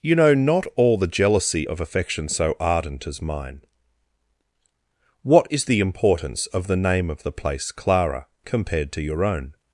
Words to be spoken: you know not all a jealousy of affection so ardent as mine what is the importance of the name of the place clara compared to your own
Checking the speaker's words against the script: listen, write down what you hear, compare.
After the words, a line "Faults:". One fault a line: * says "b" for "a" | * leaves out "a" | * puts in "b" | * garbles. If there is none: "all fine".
you know not all the jealousy of affection so ardent as mine what is the importance of the name of the place clara compared to your own
Faults:
* says "the" for "a"